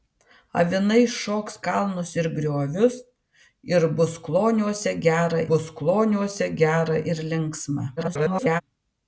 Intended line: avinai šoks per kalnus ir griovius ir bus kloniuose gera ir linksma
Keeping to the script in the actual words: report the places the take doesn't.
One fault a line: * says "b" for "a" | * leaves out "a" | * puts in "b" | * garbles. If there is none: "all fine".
* leaves out "per"
* puts in "bus kloniuose gera"
* garbles